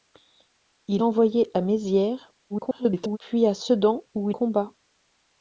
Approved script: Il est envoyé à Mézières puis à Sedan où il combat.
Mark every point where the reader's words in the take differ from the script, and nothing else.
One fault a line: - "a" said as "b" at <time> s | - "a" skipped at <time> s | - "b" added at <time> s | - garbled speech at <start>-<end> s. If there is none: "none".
- "est" skipped at 1.0 s
- garbled speech at 2.5-3.2 s
- "il" skipped at 4.3 s